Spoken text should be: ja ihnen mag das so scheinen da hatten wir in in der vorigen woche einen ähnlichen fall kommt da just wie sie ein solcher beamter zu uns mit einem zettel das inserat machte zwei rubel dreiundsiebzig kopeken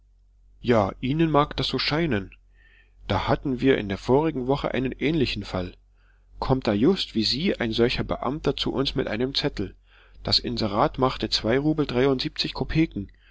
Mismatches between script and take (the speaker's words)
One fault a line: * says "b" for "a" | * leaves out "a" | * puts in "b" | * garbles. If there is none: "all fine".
* leaves out "in"